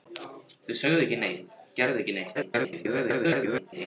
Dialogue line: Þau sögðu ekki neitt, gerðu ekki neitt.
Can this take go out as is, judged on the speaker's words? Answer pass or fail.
fail